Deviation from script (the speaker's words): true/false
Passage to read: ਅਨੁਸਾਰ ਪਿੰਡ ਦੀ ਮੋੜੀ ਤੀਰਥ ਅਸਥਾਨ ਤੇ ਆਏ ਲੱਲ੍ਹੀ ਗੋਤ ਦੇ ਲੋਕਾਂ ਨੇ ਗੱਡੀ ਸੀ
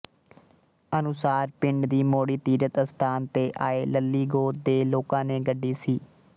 false